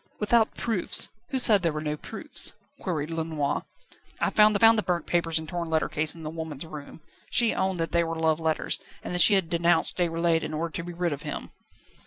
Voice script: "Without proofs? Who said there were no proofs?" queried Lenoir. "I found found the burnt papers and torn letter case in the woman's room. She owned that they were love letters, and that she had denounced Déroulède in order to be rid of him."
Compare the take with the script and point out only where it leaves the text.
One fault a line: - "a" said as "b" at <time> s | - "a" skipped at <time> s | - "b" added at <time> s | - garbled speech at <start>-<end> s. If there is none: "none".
none